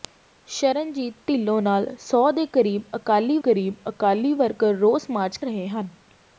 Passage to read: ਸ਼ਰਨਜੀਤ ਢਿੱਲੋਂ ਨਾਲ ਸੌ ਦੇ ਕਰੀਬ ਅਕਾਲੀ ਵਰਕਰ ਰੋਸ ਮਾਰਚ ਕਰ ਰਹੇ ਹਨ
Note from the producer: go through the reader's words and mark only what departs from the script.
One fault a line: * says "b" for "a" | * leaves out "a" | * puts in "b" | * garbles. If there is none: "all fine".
* puts in "ਕਰੀਬ ਅਕਾਲੀ"
* leaves out "ਕਰ"